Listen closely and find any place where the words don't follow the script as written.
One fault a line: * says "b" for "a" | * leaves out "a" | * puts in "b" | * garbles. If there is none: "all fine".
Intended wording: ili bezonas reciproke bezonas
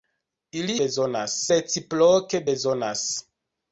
all fine